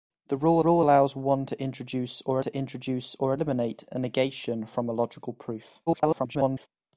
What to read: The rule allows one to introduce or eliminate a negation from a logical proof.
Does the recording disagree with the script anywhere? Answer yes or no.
yes